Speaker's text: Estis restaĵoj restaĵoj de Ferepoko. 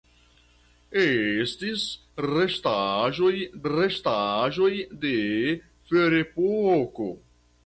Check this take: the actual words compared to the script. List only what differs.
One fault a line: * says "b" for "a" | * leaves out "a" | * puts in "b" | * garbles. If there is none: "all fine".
all fine